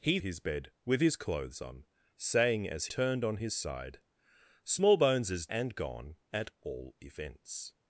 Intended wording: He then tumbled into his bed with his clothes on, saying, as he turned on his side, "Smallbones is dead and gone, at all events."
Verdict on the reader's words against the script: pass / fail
fail